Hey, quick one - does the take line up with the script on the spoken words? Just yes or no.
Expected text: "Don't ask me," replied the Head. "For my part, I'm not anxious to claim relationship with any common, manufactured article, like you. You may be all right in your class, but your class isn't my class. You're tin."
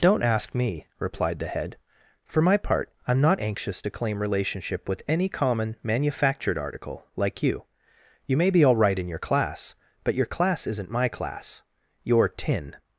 yes